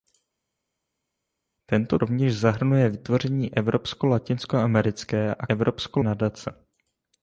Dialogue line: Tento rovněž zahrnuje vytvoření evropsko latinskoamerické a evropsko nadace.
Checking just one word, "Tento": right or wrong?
right